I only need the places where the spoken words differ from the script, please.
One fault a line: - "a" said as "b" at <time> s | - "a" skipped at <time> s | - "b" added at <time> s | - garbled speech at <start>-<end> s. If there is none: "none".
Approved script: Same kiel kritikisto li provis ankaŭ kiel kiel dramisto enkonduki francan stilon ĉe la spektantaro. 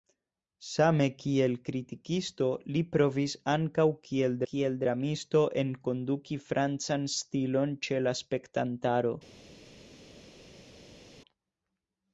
none